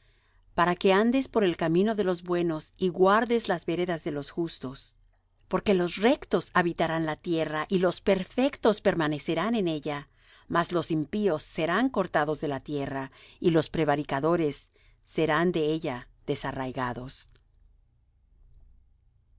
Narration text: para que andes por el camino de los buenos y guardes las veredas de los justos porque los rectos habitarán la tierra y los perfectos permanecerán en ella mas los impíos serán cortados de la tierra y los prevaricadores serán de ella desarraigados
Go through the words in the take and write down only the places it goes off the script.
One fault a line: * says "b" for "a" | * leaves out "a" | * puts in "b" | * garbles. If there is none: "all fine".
all fine